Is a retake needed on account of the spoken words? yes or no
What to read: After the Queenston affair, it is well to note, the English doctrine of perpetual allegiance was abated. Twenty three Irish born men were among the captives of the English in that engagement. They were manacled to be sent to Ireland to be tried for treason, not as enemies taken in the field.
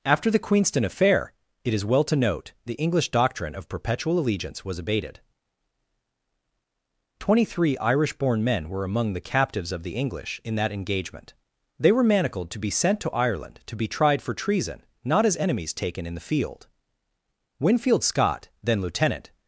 yes